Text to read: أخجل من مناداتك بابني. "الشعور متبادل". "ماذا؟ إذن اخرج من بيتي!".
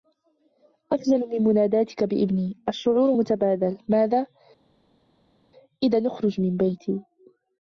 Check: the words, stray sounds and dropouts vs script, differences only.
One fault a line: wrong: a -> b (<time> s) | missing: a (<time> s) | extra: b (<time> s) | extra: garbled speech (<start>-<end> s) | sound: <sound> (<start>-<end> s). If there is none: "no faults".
no faults